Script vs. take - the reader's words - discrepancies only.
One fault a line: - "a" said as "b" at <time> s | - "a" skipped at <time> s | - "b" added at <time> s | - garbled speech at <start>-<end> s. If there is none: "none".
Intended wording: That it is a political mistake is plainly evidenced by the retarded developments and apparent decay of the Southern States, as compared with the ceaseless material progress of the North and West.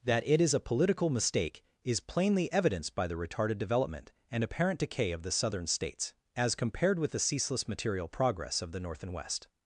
- "developments" said as "development" at 3.6 s